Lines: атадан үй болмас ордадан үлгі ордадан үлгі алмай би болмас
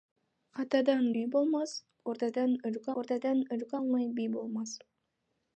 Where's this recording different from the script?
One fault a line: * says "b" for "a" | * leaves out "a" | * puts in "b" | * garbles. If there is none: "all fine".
all fine